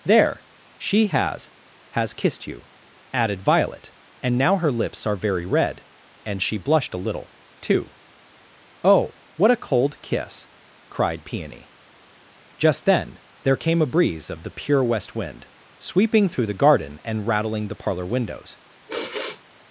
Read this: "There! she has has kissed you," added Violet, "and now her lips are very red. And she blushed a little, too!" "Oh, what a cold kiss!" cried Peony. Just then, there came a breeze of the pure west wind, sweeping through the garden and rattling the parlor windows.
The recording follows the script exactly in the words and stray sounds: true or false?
false